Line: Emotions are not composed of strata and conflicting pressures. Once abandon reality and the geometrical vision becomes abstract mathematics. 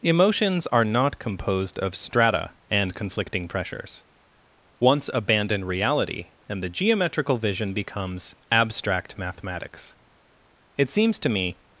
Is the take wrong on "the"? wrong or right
right